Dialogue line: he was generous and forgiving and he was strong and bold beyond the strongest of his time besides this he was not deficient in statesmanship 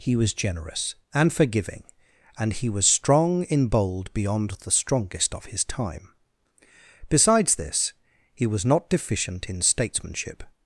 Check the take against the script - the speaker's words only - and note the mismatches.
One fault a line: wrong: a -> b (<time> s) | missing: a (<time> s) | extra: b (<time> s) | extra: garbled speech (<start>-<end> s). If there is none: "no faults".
wrong: and -> in (3.4 s)